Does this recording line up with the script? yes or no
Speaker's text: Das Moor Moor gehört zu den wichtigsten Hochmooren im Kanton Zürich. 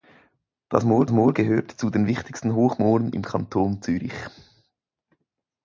yes